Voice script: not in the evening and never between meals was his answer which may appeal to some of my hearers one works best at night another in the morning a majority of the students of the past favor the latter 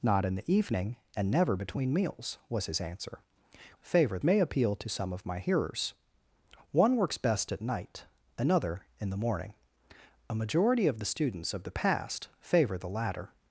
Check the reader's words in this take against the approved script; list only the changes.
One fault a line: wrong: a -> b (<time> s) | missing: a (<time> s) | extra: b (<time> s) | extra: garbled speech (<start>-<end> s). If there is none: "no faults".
wrong: which -> favor (3.8 s)